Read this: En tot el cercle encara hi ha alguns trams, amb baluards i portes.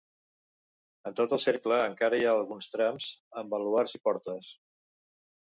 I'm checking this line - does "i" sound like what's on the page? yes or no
yes